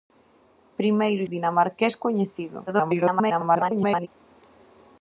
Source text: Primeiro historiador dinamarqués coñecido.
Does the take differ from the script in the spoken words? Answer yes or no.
yes